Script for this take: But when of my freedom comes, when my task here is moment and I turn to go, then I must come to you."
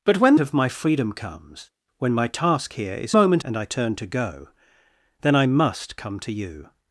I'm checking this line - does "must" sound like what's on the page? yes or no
yes